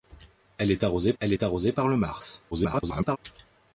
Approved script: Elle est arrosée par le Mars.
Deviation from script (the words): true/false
true